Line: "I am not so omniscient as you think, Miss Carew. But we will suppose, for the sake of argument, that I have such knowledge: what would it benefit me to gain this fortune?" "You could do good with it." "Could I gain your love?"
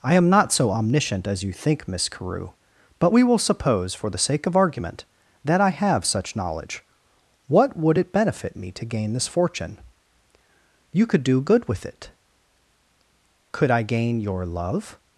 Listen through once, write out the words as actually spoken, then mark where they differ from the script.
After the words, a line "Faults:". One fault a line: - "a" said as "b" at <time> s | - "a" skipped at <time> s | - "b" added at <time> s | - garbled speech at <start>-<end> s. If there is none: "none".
"I am not so omniscient as you think, Miss Carew. But we will suppose, for the sake of argument, that I have such knowledge: what would it benefit me to gain this fortune?" "You could do good with it." "Could I gain your love?"
Faults:
none